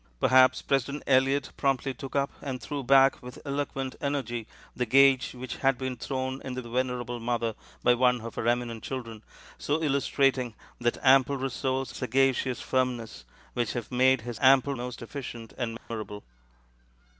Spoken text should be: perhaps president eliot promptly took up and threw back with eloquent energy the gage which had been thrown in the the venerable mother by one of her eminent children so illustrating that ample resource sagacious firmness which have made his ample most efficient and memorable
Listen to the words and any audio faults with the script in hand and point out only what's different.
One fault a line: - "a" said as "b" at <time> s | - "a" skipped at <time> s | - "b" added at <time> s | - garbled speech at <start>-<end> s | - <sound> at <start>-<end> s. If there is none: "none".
- dropout at 15.8-15.9 s